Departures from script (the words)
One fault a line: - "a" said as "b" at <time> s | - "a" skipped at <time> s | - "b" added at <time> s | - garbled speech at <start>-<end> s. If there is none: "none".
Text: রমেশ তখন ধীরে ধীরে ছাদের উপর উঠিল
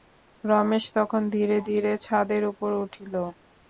none